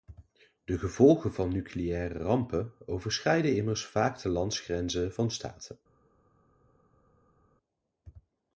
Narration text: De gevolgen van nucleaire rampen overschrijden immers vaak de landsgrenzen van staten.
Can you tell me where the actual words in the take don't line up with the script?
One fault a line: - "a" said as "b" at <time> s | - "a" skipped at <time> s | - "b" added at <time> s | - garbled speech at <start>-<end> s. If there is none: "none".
none